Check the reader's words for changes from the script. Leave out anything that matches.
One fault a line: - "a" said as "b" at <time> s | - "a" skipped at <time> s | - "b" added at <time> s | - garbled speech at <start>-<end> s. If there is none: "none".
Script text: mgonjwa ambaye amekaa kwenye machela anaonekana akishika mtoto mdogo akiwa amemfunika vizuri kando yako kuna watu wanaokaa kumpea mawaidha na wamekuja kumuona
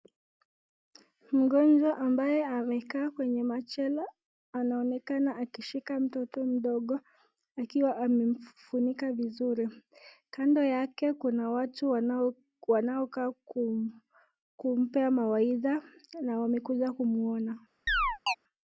- "yako" said as "yake" at 10.6 s